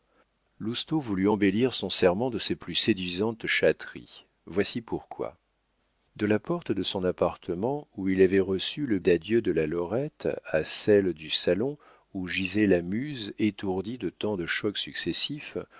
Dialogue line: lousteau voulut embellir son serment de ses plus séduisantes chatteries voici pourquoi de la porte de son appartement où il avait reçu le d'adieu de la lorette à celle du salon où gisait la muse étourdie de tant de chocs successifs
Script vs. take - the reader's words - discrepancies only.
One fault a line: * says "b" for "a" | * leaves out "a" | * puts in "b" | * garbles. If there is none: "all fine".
all fine